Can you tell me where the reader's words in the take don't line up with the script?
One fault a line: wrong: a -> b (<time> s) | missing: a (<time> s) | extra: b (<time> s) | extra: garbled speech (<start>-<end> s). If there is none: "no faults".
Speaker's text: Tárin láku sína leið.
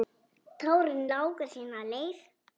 no faults